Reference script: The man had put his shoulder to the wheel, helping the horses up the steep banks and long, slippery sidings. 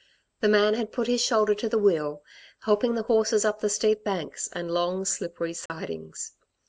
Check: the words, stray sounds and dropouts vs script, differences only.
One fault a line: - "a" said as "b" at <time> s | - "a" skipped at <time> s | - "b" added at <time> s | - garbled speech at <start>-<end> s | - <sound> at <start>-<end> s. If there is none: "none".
- dropout at 5.7-5.7 s